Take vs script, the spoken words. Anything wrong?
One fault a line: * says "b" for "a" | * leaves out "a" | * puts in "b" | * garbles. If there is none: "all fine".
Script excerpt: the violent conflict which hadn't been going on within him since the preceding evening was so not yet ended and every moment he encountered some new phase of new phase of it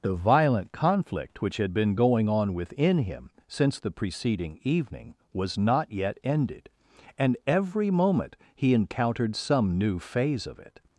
* says "had" for "hadn't"
* leaves out "so"
* leaves out "new phase of"